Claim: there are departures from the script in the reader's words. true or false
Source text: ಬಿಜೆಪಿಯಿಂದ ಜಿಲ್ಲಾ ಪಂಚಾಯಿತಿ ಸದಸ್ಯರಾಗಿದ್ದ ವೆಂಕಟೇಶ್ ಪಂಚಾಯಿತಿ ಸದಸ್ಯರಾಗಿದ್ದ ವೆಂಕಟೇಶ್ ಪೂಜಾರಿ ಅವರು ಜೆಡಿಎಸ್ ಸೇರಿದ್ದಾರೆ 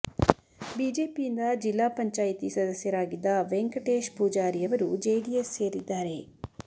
true